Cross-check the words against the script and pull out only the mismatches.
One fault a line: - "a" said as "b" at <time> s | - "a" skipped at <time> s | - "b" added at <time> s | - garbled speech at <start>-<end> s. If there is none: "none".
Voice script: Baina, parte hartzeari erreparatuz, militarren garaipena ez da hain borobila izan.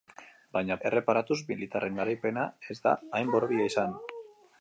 - "parte hartzeari" skipped at 0.8 s